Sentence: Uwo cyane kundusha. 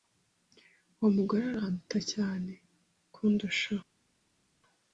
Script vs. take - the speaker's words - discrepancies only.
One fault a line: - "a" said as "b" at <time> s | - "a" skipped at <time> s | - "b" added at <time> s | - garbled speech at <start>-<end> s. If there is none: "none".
- "mugore aranduta" added at 1.2 s